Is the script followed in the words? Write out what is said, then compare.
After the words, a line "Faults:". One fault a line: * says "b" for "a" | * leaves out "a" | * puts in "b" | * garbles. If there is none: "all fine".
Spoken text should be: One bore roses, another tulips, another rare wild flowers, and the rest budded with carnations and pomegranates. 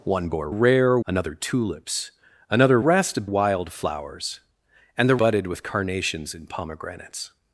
One bore rare, another tulips, another rest wild flowers, and the budded with carnations and pomegranates.
Faults:
* says "rare" for "roses"
* says "rest" for "rare"
* leaves out "rest"